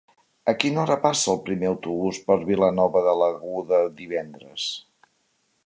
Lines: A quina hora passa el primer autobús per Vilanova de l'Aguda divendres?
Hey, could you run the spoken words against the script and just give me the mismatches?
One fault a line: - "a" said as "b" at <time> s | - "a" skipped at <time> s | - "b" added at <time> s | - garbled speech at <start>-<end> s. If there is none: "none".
none